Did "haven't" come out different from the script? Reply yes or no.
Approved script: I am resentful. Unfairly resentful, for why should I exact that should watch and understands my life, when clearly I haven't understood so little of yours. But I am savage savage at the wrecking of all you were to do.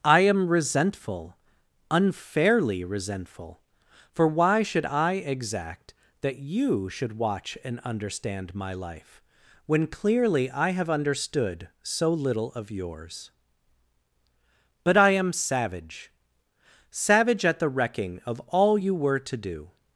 yes